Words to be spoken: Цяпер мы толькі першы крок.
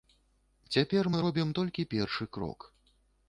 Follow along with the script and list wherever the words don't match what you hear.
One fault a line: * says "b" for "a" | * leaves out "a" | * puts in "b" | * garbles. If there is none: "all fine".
* puts in "робім"